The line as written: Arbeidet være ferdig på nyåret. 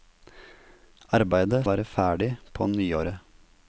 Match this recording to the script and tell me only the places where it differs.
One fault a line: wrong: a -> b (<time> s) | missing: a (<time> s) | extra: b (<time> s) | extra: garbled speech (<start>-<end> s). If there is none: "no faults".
no faults